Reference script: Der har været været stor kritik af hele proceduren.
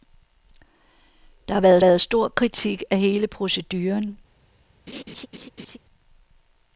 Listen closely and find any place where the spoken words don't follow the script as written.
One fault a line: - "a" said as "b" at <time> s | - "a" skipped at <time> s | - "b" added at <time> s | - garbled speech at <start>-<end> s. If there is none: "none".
none